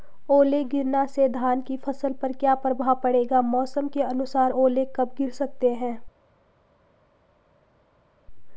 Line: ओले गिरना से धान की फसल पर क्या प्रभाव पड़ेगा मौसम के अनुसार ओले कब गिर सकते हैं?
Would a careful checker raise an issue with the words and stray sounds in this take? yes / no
no